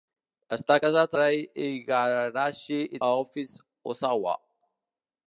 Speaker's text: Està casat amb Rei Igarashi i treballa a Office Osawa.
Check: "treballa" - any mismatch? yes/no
yes